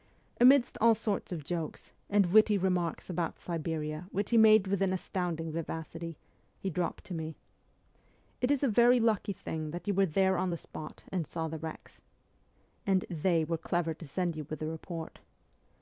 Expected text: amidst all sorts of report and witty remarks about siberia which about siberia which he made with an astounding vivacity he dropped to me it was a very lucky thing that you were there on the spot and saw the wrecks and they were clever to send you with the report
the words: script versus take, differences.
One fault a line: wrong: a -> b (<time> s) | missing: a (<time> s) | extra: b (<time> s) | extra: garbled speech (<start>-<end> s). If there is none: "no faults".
wrong: report -> jokes (1.4 s)
missing: about siberia which (4.3 s)
wrong: was -> is (8.5 s)